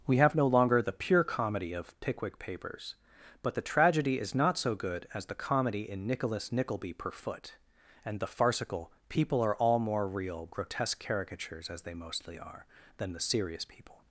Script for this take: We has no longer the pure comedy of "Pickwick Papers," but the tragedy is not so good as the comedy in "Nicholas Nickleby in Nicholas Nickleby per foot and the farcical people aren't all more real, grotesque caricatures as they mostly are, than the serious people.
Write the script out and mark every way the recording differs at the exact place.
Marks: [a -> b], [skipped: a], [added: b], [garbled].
We [has -> have] no longer the pure comedy of "Pickwick Papers," but the tragedy is not so good as the comedy in "Nicholas Nickleby [skipped: in Nicholas Nickleby] per foot and the farcical people [aren't -> are] all more real, grotesque caricatures as they mostly are, than the serious people.